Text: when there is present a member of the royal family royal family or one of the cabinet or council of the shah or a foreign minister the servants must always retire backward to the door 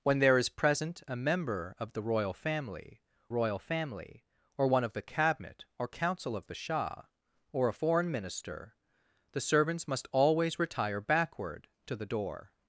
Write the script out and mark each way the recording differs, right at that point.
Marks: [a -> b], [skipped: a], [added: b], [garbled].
when there is present a member of the royal family royal family or one of the cabinet or council of the shah or a foreign minister the servants must always retire backward to the door